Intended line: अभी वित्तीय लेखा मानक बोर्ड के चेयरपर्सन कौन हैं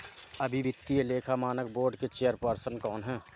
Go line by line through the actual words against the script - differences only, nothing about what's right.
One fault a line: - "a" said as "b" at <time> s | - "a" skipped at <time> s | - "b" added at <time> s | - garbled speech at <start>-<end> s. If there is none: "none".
none